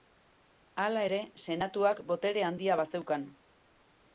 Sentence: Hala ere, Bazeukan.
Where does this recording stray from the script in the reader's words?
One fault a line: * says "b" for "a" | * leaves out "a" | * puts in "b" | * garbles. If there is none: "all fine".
* puts in "Senatuak botere handia"